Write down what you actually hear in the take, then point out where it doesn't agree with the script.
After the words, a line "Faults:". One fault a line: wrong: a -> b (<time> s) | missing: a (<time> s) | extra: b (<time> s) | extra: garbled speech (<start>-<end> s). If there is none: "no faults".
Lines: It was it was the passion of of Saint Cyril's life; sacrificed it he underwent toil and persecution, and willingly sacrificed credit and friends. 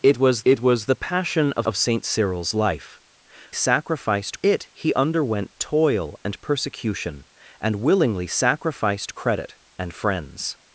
It was it was the passion of of Saint Cyril's life; sacrificed it he underwent toil and persecution, and willingly sacrificed credit and friends.
Faults:
no faults